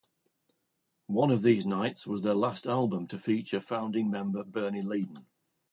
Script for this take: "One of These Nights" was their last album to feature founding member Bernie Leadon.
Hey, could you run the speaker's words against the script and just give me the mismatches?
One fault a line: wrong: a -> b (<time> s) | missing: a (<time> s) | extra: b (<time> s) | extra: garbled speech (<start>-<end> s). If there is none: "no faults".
no faults